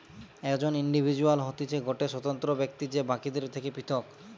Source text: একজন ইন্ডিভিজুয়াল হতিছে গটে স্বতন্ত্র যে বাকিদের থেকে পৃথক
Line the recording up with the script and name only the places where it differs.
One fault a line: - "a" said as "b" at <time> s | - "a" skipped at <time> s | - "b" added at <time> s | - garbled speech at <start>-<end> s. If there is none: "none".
- "ব্যক্তি" added at 2.5 s